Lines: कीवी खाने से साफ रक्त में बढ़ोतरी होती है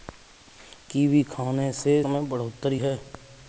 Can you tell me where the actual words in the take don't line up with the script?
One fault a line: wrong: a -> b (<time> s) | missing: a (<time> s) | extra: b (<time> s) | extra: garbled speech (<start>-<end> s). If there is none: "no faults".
missing: साफ रक्त (2.0 s)
missing: होती (2.8 s)